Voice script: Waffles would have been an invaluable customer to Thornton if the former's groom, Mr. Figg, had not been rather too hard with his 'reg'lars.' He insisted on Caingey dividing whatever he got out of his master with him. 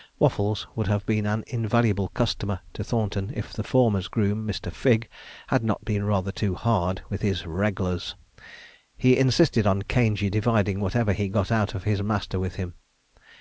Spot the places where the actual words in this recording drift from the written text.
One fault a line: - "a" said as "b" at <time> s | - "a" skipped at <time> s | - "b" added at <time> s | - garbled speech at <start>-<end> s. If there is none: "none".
none